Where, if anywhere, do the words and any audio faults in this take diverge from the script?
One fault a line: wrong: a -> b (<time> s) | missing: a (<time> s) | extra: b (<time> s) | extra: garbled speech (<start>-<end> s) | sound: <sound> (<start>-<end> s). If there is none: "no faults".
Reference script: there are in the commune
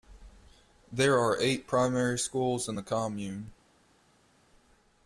extra: eight primary schools (1.4 s)